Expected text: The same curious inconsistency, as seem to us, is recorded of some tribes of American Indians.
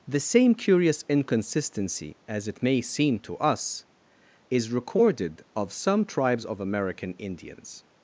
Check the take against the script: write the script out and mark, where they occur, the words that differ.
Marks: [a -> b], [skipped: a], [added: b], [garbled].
The same curious inconsistency, as [added: it may] seem to us, is recorded of some tribes of American Indians.